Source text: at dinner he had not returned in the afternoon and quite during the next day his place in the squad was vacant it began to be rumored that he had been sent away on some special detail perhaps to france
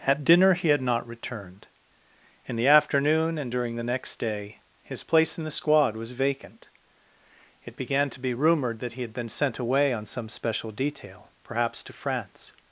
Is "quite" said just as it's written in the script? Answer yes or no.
no